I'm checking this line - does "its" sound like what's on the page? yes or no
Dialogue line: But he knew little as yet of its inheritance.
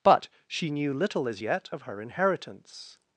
no